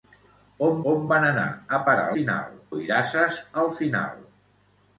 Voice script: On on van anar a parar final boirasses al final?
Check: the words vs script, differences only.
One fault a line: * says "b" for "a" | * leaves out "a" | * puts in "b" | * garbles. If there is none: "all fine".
all fine